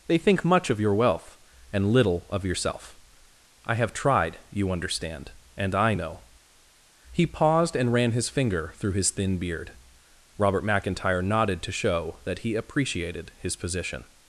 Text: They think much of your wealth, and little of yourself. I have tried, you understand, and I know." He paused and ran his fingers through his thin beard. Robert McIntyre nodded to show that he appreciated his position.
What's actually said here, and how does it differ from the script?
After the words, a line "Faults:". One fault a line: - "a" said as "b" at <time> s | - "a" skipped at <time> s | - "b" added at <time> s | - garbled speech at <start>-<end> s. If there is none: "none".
They think much of your wealth, and little of yourself. I have tried, you understand, and I know." He paused and ran his finger through his thin beard. Robert McIntyre nodded to show that he appreciated his position.
Faults:
- "fingers" said as "finger" at 8.3 s